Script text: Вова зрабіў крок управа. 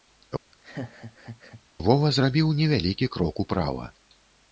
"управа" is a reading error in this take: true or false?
false